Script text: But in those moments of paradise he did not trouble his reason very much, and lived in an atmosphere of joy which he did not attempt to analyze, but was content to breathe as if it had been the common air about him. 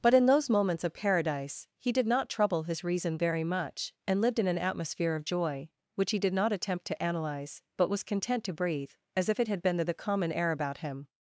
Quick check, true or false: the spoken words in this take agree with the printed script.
false